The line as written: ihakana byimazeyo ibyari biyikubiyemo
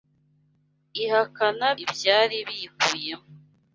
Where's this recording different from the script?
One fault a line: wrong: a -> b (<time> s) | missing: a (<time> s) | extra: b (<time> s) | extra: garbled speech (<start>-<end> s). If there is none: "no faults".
missing: byimazeyo (1.7 s)